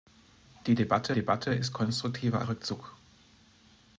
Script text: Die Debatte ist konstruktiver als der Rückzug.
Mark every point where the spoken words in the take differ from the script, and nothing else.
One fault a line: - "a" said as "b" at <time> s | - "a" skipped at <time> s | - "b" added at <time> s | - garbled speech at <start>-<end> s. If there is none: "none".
- "Debatte" added at 1.1 s
- "als" skipped at 2.4 s